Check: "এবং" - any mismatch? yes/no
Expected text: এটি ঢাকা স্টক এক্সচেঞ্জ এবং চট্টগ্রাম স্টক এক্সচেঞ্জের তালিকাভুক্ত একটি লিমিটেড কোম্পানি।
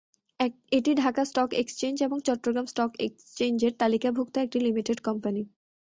no